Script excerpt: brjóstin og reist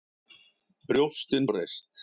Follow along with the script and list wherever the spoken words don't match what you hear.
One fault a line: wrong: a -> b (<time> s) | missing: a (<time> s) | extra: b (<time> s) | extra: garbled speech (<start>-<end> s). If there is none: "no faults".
no faults